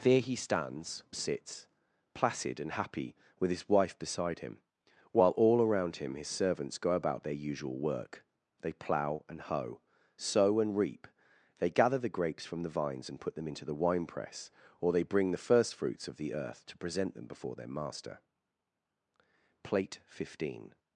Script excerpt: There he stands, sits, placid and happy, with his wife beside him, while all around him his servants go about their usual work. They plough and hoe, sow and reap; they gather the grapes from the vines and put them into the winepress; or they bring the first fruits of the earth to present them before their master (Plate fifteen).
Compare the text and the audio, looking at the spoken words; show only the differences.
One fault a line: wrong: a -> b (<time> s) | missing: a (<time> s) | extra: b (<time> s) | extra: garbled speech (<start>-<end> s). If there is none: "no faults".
no faults